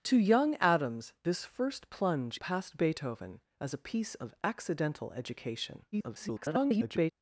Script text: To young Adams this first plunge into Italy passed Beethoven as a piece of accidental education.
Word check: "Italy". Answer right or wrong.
wrong